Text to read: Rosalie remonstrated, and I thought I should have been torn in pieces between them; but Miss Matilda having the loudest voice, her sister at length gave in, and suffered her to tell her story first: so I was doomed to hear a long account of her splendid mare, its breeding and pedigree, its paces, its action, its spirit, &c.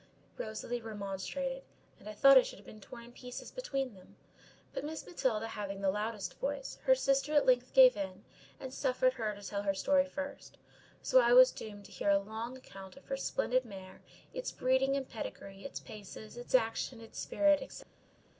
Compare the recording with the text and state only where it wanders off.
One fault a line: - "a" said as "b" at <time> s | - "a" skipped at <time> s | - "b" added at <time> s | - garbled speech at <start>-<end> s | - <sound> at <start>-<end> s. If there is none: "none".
none